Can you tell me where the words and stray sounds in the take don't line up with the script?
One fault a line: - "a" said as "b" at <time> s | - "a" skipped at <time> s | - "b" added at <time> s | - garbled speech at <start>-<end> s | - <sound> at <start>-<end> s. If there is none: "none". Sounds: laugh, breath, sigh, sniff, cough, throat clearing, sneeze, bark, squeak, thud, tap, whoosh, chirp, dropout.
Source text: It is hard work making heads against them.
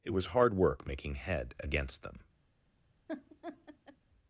- "is" said as "was" at 0.1 s
- "heads" said as "head" at 1.1 s
- laugh at 3.1-4.0 s